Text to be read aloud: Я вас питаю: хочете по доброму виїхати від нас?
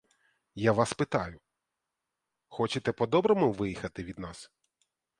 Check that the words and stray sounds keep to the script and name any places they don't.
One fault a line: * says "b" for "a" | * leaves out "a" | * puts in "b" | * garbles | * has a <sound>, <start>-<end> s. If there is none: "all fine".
all fine